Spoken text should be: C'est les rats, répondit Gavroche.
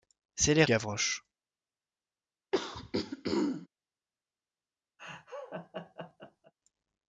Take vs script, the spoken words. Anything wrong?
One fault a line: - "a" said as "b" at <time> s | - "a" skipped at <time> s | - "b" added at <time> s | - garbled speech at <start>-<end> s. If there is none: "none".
- "rats répondit" skipped at 0.7 s